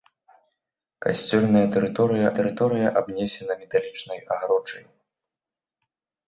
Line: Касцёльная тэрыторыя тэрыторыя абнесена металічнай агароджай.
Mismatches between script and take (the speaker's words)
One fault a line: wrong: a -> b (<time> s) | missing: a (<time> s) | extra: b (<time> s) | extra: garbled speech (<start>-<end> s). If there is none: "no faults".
no faults